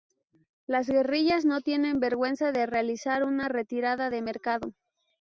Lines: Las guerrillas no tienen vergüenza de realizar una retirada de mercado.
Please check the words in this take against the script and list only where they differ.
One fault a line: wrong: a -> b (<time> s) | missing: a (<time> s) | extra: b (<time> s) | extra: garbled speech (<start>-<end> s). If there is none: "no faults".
no faults